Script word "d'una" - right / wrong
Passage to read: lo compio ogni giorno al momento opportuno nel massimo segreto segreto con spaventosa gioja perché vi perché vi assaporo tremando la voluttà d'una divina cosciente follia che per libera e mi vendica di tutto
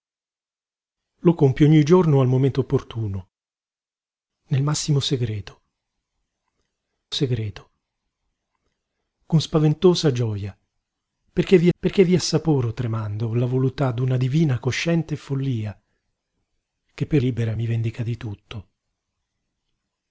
right